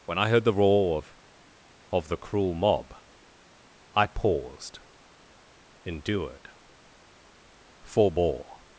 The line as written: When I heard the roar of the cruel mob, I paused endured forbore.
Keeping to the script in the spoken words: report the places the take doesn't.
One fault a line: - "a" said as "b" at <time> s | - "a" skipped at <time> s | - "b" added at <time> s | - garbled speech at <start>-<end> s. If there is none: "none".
- "of" added at 1.9 s